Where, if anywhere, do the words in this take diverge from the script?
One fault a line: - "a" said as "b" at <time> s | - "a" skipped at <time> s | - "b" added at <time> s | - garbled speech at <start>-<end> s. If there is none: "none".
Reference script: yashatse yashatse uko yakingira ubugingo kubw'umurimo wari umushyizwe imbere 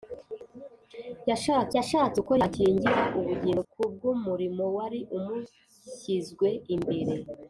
none